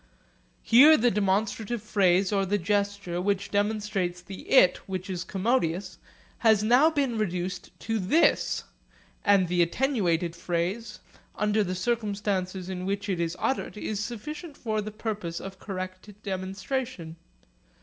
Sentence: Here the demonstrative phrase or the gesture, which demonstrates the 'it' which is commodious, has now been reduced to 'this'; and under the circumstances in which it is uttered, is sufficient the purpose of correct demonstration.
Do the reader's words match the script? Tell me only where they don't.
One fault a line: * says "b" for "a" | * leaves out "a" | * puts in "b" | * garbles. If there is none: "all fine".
* puts in "the attenuated phrase"
* puts in "for"